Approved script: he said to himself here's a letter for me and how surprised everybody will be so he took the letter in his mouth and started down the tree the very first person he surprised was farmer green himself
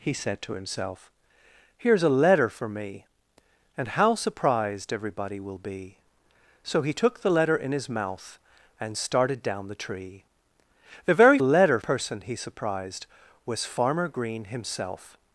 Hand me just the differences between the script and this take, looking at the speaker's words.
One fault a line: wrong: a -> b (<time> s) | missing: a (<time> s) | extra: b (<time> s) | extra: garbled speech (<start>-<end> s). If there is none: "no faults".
wrong: first -> letter (11.4 s)